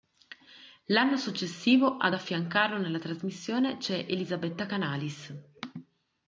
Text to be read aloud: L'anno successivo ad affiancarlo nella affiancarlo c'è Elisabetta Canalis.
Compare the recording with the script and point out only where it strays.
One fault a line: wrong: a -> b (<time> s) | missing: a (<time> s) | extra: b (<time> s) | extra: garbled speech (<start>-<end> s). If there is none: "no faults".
wrong: affiancarlo -> trasmissione (3.0 s)